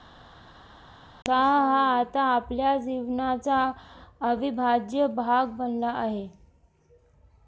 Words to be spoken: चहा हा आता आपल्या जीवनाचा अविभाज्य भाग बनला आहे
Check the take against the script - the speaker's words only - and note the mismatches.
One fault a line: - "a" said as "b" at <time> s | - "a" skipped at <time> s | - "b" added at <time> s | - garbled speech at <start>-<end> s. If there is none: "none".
none